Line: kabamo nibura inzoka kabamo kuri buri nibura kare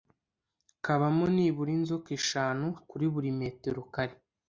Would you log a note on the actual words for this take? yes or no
yes